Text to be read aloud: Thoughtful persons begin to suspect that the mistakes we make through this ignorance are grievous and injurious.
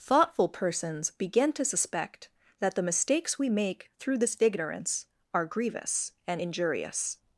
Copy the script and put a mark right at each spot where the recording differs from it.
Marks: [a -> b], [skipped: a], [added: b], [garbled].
Thoughtful persons begin to suspect that the mistakes we make through this ignorance are grievous and injurious.